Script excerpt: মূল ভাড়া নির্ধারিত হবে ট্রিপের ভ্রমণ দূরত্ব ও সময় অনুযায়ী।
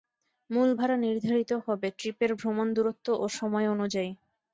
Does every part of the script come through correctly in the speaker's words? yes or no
yes